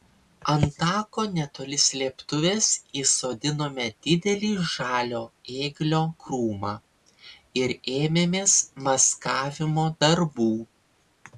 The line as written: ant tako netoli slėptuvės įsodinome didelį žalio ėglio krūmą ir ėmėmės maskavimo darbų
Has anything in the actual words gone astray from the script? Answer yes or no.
no